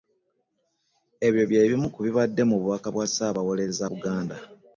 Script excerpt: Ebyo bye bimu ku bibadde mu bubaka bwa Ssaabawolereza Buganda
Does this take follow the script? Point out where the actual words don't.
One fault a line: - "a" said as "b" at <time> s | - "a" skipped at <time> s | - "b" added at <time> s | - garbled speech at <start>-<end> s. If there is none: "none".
none